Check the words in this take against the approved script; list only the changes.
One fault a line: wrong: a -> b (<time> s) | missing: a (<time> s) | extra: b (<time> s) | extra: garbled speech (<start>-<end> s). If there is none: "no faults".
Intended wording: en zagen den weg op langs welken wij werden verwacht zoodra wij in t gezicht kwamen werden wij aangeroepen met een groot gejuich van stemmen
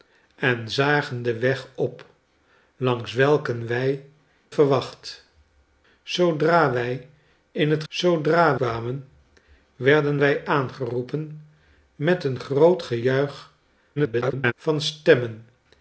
missing: werden (4.0 s)
wrong: gezicht -> zoodra (7.9 s)
extra: garbled speech (14.0-14.5 s)